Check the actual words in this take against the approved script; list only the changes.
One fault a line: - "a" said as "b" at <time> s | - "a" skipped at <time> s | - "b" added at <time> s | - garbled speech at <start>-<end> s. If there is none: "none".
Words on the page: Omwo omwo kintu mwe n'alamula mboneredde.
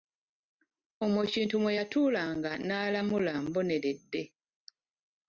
- "omwo" skipped at 1.2 s
- "yatuulanga" added at 1.8 s